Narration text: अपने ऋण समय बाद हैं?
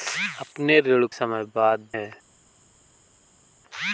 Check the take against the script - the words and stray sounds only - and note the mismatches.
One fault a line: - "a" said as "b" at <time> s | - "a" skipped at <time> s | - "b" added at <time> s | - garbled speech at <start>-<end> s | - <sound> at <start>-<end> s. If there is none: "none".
none